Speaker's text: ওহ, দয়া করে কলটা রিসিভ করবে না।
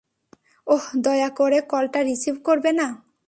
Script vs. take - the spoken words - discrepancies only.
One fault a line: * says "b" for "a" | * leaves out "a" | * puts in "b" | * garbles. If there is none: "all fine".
all fine